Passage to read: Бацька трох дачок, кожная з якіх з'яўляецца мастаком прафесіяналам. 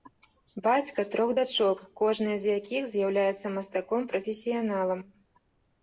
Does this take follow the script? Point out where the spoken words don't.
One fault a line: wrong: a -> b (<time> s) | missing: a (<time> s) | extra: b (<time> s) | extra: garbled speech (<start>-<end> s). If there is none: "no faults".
no faults